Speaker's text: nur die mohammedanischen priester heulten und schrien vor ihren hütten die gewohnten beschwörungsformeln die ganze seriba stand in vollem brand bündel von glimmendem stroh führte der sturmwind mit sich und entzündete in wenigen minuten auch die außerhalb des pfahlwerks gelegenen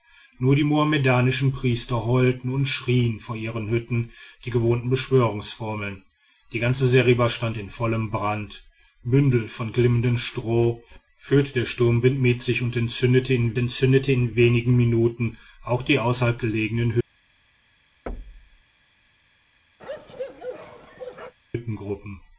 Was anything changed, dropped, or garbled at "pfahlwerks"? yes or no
yes